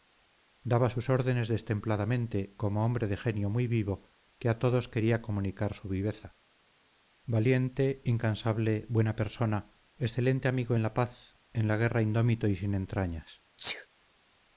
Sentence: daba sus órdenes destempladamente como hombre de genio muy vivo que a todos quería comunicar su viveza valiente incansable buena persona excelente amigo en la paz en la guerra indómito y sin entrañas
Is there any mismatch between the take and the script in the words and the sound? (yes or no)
yes